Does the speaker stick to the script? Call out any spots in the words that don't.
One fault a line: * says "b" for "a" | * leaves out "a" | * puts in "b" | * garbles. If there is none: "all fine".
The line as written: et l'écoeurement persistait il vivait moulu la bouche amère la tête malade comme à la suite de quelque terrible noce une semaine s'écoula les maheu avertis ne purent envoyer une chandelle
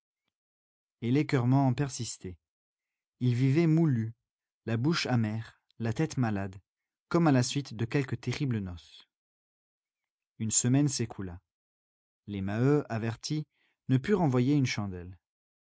all fine